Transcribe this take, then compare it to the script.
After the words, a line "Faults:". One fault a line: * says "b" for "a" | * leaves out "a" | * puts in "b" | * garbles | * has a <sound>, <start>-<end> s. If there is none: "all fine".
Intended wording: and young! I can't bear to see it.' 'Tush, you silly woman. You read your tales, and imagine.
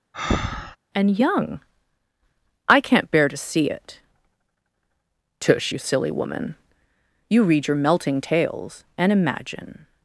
and young! I can't bear to see it.' 'Tush, you silly woman. You read your melting tales, and imagine.
Faults:
* has a breath, 0.1-0.8 s
* puts in "melting"